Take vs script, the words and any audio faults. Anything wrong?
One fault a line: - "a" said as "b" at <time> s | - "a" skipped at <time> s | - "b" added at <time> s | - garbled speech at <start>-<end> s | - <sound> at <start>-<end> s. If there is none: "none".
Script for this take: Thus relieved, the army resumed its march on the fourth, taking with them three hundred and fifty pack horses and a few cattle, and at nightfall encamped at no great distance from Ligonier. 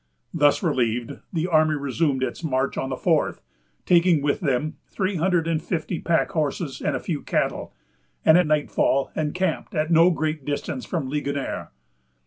none